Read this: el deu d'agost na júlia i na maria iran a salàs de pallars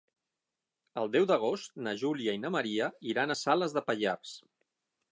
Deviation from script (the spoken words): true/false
false